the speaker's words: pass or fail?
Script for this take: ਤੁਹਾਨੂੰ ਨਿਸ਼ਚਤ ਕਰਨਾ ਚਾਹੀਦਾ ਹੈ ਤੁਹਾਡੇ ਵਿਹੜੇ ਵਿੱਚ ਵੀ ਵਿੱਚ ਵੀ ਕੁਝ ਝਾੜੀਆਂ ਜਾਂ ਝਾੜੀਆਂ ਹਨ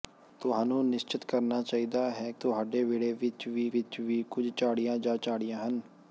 pass